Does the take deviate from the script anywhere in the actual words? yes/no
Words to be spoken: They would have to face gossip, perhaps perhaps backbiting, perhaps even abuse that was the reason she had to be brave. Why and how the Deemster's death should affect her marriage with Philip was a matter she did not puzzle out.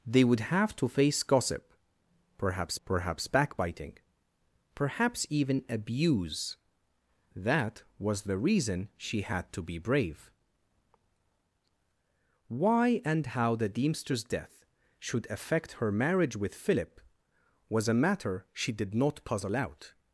no